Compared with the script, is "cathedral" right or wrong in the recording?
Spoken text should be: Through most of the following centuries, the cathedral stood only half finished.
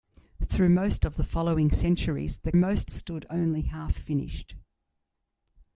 wrong